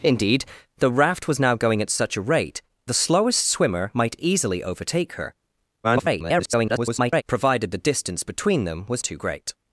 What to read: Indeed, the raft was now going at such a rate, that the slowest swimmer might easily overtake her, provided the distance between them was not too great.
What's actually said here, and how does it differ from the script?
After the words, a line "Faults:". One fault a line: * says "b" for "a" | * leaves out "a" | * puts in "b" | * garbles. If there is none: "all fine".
Indeed, the raft was now going at such a rate, the slowest swimmer might easily overtake her, [garbled] provided the distance between them was too great.
Faults:
* leaves out "that"
* garbles
* leaves out "not"